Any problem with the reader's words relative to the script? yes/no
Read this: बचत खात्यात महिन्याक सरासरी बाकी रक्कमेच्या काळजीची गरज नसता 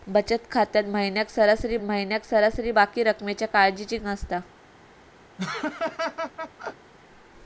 yes